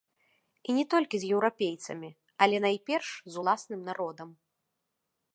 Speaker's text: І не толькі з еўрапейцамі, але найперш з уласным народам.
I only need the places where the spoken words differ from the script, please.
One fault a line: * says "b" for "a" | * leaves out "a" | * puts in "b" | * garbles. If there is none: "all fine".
all fine